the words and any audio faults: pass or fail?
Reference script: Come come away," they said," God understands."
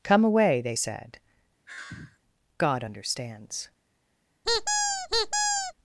fail